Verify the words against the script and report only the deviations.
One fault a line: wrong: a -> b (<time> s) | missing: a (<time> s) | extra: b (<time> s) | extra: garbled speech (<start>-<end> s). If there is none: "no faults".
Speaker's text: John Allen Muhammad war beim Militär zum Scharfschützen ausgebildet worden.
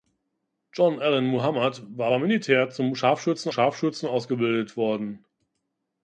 extra: Scharfschützen (3.5 s)